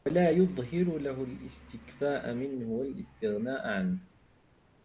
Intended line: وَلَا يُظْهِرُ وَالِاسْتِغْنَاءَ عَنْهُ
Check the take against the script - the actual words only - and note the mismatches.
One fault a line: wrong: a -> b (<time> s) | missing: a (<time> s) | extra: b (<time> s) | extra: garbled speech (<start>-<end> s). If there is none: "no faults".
extra: لَهُ الِاسْتِكْفَاءَ مِنْهُ (1.0 s)